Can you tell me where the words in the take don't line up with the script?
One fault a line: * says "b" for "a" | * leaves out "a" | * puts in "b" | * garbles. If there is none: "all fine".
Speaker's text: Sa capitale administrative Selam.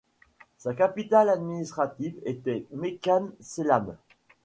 * puts in "était Mekane"